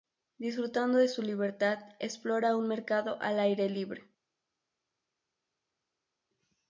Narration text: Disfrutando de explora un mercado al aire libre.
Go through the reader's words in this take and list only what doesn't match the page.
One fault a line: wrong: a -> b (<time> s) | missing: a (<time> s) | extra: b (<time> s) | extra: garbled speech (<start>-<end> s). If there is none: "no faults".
extra: su libertad (1.1 s)